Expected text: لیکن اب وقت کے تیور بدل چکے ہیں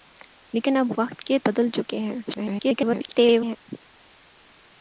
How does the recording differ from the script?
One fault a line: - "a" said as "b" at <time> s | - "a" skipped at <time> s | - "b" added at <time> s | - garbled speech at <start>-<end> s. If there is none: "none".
- "تیور" skipped at 1.4 s
- garbled speech at 2.3-3.6 s